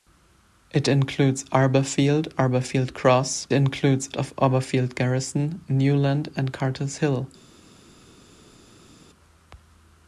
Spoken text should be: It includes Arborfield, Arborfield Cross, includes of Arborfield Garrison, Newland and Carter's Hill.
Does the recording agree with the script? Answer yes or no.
yes